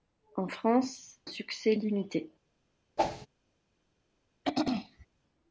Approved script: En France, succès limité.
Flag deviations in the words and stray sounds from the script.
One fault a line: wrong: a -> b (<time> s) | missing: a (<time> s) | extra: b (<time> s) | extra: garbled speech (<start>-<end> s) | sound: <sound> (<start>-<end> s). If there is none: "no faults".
sound: whoosh (3.0-3.3 s)
sound: throat clearing (4.4-5.1 s)